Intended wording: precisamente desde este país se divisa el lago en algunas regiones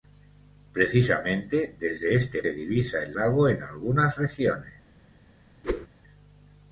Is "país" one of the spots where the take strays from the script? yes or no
yes